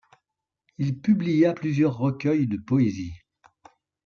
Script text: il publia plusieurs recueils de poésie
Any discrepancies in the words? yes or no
no